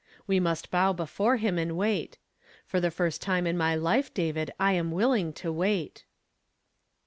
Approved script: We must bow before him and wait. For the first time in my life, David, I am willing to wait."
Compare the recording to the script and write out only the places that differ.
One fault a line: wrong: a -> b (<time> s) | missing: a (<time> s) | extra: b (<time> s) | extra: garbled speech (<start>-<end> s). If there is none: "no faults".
no faults